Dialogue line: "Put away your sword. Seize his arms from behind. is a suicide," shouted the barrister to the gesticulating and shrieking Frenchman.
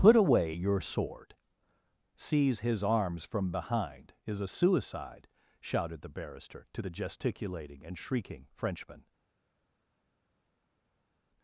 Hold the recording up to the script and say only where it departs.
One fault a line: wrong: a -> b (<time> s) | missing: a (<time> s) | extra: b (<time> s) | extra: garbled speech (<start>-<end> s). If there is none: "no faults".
no faults